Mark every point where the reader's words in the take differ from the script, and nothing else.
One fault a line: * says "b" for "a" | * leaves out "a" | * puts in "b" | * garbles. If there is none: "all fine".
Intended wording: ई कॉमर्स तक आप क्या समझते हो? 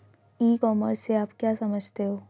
* says "से" for "तक"